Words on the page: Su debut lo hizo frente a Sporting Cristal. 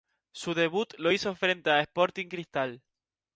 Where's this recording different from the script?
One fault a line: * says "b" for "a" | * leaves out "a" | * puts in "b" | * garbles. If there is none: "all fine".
all fine